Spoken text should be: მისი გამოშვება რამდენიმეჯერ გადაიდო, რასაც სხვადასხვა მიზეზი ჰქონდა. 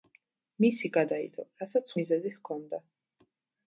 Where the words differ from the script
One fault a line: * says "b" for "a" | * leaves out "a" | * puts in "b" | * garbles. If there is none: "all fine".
* leaves out "გამოშვება რამდენიმეჯერ"
* leaves out "სხვადასხვა"